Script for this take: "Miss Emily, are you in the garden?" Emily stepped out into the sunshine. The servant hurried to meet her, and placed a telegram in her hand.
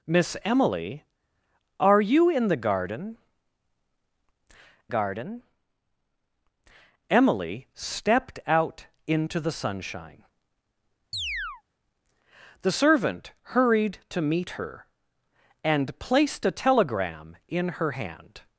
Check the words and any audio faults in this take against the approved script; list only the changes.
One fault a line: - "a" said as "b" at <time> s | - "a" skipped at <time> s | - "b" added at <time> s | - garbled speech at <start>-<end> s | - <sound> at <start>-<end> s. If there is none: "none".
- "garden" added at 4.9 s
- chirp at 11.1-11.6 s